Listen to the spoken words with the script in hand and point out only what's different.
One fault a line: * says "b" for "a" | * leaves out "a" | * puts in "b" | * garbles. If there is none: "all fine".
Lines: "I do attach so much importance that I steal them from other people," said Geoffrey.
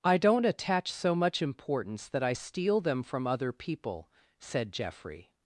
* says "don't" for "do"